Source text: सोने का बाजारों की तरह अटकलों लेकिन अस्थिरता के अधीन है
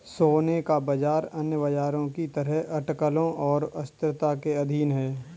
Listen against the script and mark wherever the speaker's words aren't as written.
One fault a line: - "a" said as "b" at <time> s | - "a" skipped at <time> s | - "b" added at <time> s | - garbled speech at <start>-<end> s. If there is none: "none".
- "बाजार अन्य" added at 0.8 s
- "लेकिन" said as "और" at 3.4 s